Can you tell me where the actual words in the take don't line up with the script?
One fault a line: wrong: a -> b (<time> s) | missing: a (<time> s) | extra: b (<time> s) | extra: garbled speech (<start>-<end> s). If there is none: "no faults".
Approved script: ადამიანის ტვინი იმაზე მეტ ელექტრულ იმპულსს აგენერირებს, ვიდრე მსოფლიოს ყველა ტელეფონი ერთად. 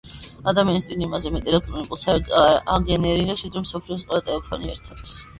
no faults